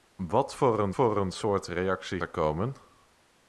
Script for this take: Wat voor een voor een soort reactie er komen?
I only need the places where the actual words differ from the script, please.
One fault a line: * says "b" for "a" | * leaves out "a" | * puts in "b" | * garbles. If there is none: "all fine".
all fine